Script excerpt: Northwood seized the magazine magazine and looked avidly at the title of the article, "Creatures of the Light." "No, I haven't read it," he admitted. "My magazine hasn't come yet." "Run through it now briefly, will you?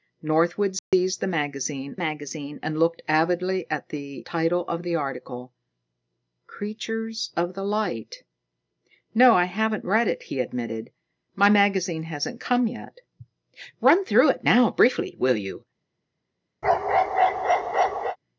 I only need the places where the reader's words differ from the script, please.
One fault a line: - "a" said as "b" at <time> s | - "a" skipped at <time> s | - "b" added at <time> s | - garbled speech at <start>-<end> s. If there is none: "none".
none